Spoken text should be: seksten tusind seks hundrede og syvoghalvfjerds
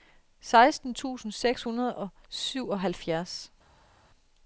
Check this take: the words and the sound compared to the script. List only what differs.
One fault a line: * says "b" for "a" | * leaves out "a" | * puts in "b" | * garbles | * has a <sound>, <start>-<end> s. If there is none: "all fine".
all fine